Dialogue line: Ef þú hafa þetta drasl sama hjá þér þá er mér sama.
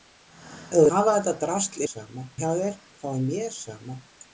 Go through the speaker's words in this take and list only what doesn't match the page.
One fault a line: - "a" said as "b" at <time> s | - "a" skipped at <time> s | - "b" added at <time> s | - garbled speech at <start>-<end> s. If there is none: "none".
none